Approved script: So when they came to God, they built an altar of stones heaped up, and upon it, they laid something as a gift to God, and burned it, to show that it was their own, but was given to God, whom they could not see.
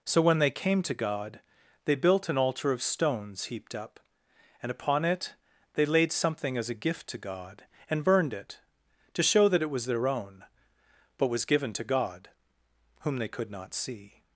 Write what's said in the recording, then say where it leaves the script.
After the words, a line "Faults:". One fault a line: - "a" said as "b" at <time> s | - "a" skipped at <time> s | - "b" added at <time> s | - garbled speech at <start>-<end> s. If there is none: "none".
So when they came to God, they built an altar of stones heaped up, and upon it, they laid something as a gift to God, and burned it, to show that it was their own, but was given to God, whom they could not see.
Faults:
none